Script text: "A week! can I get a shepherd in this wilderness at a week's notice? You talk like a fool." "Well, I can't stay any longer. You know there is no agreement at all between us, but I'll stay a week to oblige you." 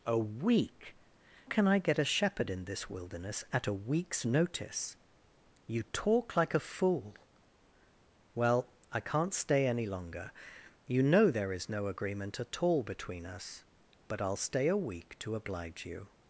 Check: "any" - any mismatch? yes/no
no